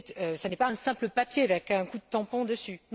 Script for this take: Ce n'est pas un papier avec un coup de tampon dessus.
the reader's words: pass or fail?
fail